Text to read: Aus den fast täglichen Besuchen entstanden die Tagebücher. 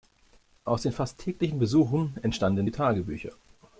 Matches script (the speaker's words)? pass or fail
pass